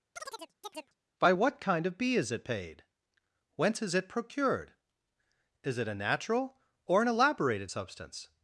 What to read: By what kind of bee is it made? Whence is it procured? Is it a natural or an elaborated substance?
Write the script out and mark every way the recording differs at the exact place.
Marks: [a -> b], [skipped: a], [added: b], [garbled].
By what kind of bee is it [made? -> paid] Whence is it procured? Is it a natural or an elaborated substance?